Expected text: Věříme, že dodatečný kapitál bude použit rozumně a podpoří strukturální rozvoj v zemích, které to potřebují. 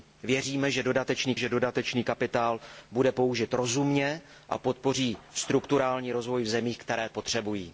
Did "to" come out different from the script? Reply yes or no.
yes